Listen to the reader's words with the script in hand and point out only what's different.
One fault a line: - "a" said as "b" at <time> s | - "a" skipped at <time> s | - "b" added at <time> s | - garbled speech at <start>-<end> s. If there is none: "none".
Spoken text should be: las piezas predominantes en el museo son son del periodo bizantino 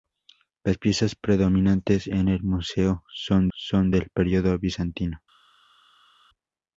none